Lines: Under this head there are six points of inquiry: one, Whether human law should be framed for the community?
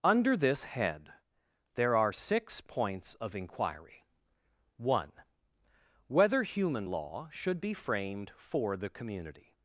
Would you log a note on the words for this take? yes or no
no